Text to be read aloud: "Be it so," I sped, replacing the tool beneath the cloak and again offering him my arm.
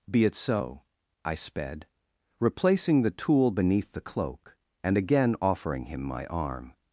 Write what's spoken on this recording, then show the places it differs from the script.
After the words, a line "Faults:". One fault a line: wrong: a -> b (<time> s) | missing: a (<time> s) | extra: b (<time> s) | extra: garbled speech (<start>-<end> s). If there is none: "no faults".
"Be it so," I sped, replacing the tool beneath the cloak and again offering him my arm.
Faults:
no faults